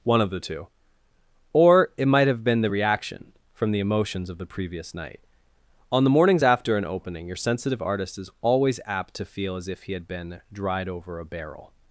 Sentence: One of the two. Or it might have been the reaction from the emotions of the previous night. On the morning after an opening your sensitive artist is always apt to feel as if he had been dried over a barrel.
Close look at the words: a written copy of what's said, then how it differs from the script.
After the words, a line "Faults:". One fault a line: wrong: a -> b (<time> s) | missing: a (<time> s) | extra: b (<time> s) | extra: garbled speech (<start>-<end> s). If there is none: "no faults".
One of the two. Or it might have been the reaction from the emotions of the previous night. On the mornings after an opening your sensitive artist is always apt to feel as if he had been dried over a barrel.
Faults:
wrong: morning -> mornings (6.1 s)